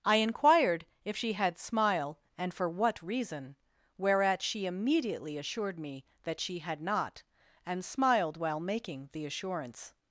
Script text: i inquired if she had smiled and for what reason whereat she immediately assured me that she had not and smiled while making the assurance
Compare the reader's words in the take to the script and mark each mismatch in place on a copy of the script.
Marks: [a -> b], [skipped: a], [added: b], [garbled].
i inquired if she had [smiled -> smile] and for what reason whereat she immediately assured me that she had not and smiled while making the assurance